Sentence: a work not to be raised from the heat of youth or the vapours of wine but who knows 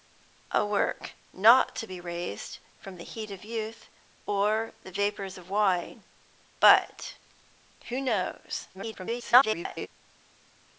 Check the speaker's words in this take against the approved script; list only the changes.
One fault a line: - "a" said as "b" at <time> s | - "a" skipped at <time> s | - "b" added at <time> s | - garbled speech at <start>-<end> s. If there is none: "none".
- garbled speech at 8.7-9.9 s